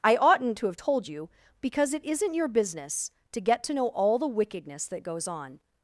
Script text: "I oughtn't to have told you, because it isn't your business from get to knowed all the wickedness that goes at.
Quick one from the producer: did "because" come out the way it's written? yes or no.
yes